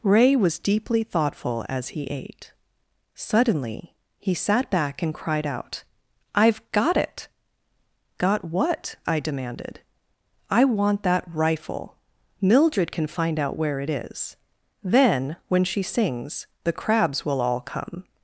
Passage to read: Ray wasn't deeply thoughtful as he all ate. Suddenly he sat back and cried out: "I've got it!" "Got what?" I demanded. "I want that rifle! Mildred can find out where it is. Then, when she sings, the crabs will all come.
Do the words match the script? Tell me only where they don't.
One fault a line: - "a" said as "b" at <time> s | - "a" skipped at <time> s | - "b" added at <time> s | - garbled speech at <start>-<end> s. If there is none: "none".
- "wasn't" said as "was" at 0.3 s
- "all" skipped at 2.0 s